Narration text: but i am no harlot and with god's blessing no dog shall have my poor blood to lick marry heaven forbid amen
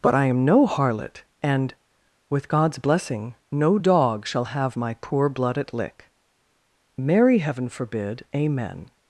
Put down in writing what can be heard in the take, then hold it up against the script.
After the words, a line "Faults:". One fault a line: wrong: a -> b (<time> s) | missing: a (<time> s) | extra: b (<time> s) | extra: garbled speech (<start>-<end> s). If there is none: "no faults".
but i am no harlot and with god's blessing no dog shall have my poor blood at lick marry heaven forbid amen
Faults:
wrong: to -> at (5.6 s)